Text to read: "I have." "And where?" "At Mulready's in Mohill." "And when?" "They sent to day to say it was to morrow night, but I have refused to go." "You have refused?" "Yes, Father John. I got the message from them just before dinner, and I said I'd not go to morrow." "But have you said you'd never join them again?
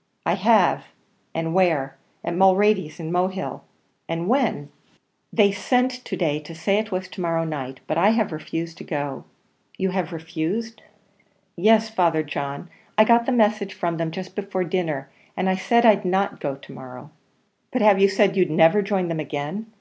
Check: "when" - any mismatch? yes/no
no